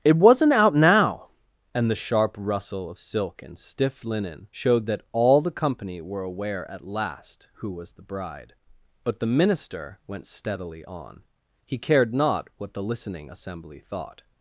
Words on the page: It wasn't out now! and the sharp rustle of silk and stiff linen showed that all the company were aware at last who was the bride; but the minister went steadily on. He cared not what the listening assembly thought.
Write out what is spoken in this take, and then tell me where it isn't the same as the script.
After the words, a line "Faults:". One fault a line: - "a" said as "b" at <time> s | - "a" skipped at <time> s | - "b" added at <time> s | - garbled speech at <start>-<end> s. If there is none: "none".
It wasn't out now! and the sharp rustle of silk and stiff linen showed that all the company were aware at last who was the bride; but the minister went steadily on. He cared not what the listening assembly thought.
Faults:
none